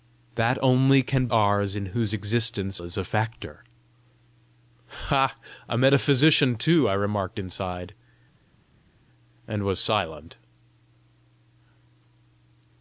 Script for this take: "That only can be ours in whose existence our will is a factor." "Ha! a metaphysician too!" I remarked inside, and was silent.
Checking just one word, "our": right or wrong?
wrong